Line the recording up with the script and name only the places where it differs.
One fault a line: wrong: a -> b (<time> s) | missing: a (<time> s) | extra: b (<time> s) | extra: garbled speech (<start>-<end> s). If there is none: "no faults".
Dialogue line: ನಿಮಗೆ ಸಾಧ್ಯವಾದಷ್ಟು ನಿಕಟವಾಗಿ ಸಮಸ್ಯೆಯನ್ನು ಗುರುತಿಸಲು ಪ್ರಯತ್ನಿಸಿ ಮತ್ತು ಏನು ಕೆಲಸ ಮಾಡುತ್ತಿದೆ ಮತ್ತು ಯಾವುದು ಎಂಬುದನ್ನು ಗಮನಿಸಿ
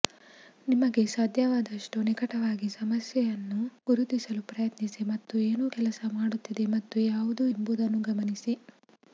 no faults